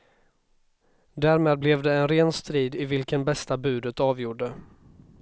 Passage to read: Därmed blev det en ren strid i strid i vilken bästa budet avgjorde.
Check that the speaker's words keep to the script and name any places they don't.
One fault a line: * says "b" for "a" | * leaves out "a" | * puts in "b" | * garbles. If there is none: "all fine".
* leaves out "strid i"